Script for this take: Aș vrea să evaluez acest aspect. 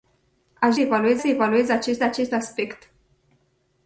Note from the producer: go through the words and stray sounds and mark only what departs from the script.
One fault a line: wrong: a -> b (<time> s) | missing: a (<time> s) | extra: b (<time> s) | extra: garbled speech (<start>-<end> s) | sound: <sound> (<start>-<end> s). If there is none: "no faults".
wrong: vrea -> evaluez (0.8 s)
extra: acest (2.0 s)